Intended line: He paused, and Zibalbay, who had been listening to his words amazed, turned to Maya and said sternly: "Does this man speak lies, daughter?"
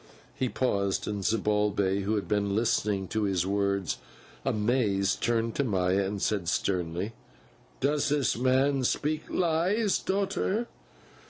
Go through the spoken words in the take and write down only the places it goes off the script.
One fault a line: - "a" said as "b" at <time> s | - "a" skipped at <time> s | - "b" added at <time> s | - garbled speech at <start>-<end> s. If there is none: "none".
none